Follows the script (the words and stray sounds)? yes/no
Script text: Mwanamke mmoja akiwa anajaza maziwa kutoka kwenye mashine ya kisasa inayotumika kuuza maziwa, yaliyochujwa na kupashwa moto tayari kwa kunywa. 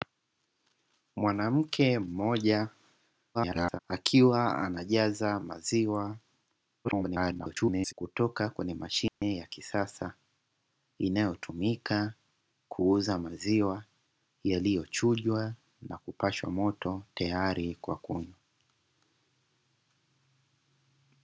no